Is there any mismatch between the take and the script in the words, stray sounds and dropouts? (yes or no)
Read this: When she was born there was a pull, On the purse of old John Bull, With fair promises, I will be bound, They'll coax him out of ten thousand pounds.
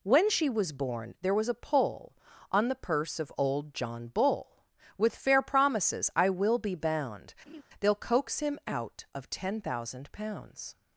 yes